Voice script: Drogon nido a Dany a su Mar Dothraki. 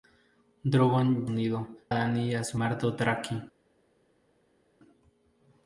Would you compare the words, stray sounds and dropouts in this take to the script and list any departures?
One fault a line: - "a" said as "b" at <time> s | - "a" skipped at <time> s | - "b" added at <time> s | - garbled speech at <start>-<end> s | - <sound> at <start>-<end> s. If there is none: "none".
none